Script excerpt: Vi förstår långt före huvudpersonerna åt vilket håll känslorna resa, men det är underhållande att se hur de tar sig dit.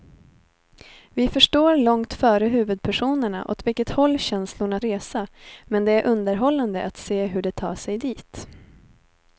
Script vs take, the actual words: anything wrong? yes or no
no